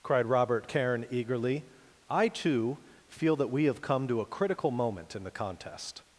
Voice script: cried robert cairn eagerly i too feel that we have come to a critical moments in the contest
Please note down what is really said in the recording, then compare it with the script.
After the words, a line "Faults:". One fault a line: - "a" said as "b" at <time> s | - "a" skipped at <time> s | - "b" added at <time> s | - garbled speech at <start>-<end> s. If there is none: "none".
cried robert cairn eagerly i too feel that we have come to a critical moment in the contest
Faults:
- "moments" said as "moment" at 4.7 s